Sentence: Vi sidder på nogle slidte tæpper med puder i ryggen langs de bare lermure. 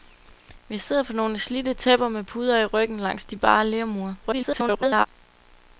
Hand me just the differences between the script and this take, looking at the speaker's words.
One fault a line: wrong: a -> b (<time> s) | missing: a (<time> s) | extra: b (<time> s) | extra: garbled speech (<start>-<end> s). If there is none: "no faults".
extra: garbled speech (4.2-5.1 s)